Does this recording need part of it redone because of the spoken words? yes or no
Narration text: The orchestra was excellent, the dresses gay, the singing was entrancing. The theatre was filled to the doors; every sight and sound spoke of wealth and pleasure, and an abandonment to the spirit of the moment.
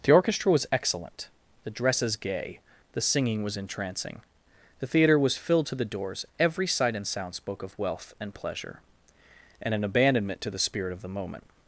no